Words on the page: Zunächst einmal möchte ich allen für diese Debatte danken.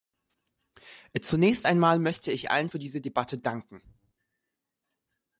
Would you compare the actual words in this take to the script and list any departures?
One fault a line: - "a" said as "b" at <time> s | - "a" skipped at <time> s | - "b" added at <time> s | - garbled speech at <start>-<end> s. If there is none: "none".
none